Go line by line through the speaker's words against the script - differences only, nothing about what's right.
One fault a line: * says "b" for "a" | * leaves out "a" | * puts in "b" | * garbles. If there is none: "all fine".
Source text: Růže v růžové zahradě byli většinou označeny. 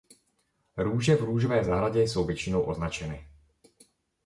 * says "jsou" for "byli"